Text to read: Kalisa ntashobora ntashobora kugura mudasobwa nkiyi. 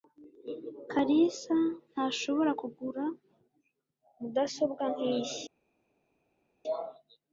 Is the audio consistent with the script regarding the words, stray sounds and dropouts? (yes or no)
no